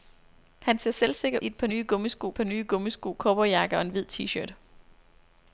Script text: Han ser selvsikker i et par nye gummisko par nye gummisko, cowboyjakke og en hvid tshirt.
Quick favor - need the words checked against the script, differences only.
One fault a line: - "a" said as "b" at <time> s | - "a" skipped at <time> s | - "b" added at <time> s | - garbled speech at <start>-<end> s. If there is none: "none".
none